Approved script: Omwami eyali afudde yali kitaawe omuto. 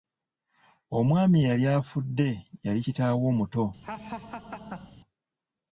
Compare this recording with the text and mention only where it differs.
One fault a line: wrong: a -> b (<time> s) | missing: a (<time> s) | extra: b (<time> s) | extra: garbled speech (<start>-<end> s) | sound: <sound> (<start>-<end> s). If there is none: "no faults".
sound: laugh (3.8-5.0 s)